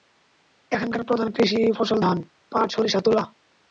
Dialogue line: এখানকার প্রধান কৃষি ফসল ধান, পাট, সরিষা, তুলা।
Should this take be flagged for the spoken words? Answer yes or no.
no